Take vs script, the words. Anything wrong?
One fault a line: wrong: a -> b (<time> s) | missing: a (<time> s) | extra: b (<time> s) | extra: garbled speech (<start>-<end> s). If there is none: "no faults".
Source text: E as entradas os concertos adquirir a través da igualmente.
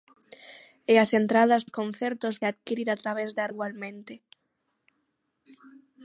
no faults